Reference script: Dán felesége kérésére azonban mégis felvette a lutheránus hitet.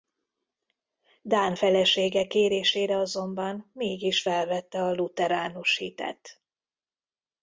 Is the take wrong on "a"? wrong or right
right